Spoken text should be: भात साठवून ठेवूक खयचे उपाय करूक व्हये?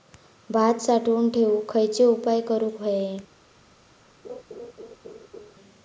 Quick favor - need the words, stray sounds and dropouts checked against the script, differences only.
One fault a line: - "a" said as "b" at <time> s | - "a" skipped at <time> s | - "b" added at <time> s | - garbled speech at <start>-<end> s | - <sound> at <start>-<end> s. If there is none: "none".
- laugh at 4.2-5.5 s